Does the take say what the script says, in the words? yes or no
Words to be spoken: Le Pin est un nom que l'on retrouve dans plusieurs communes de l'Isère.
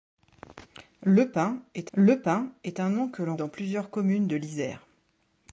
no